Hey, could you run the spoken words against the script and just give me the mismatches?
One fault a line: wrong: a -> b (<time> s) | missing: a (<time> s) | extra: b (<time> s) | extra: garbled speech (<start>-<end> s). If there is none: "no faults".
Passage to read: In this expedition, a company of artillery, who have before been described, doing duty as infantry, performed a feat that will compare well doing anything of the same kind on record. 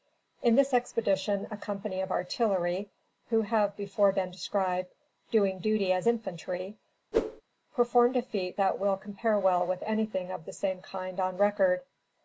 wrong: doing -> with (9.6 s)